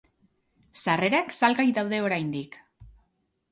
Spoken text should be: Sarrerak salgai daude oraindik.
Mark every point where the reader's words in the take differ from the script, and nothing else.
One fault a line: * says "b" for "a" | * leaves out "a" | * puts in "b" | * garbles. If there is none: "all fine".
all fine